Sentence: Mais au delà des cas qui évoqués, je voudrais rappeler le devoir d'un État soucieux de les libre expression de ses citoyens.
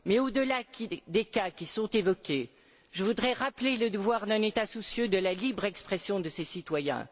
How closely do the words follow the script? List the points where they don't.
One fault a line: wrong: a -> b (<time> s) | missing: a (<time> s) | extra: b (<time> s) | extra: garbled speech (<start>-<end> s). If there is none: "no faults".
extra: sont (1.6 s)
wrong: les -> la (5.2 s)